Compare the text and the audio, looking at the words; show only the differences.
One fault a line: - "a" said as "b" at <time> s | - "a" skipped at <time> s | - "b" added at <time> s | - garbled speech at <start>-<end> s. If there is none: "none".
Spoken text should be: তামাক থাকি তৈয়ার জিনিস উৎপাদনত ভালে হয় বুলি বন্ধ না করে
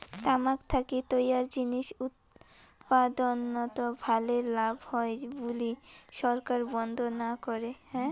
- "লাভ" added at 4.5 s
- "সরকার" added at 6.1 s